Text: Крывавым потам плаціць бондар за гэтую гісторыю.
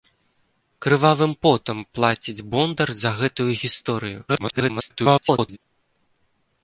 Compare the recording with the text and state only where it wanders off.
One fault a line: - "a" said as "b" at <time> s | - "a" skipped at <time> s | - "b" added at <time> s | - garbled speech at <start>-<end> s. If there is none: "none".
- garbled speech at 4.3-5.6 s